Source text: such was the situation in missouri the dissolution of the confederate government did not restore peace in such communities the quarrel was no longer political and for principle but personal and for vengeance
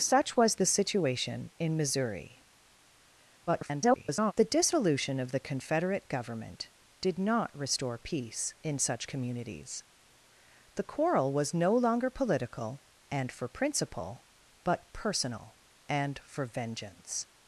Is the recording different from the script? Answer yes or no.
yes